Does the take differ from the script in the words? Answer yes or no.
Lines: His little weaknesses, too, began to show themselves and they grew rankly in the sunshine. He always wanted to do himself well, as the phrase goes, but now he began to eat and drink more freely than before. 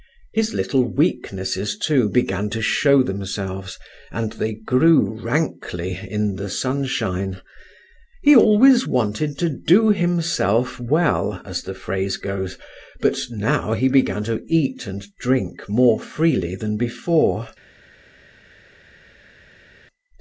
no